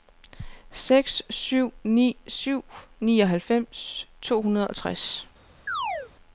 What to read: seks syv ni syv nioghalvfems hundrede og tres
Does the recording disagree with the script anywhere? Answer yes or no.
yes